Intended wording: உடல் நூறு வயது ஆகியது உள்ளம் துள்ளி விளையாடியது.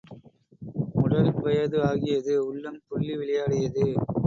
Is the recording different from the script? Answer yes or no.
yes